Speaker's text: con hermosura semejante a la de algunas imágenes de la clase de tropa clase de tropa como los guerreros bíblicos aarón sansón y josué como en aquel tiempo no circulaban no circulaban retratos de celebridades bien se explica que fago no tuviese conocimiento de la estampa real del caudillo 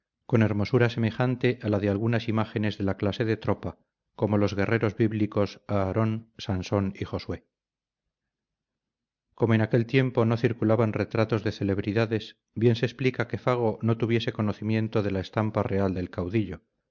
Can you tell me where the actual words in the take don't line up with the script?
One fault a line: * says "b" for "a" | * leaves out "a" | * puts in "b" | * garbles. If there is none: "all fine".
* leaves out "clase de tropa"
* leaves out "no circulaban"